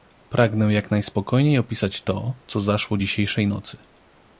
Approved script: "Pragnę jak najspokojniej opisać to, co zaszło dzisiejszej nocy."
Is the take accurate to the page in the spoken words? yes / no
yes